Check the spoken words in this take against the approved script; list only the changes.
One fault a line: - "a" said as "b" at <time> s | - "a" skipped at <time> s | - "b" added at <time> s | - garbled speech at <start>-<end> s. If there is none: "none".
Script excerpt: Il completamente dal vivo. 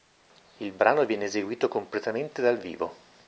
- "brano viene eseguito" added at 0.7 s